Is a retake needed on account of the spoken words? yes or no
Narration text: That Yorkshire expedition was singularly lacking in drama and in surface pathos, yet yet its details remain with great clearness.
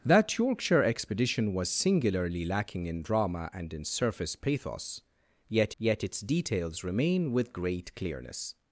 no